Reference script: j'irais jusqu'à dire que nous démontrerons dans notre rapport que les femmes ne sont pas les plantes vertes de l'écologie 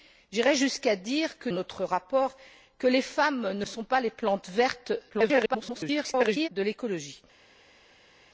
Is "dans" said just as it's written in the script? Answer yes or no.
no